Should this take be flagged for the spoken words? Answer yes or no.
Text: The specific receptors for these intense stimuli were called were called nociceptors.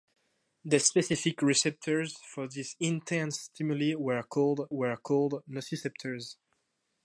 no